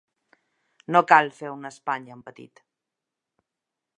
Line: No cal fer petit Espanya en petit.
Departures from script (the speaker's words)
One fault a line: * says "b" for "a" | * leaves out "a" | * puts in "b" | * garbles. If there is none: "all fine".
* says "una" for "petit"